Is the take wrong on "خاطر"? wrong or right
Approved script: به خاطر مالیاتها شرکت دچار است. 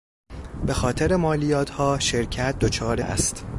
right